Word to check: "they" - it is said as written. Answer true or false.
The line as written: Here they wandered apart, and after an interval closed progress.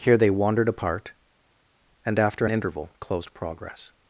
true